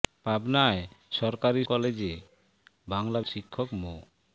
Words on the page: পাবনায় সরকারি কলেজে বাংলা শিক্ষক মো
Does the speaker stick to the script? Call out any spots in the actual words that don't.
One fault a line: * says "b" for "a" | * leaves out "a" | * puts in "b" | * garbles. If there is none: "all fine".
all fine